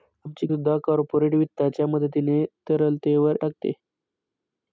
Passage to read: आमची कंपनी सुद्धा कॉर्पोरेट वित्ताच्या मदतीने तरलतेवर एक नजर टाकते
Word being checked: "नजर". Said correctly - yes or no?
no